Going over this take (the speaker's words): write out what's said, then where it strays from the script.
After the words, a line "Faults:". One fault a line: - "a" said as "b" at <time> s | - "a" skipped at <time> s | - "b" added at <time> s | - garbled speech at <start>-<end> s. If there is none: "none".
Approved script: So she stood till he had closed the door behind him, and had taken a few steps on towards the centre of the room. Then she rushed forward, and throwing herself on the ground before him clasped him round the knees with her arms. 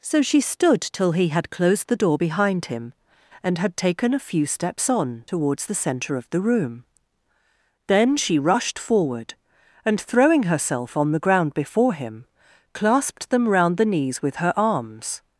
So she stood till he had closed the door behind him, and had taken a few steps on towards the centre of the room. Then she rushed forward, and throwing herself on the ground before him clasped them round the knees with her arms.
Faults:
- "him" said as "them" at 13.3 s